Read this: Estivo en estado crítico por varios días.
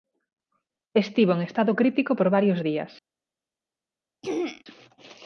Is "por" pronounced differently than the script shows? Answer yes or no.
no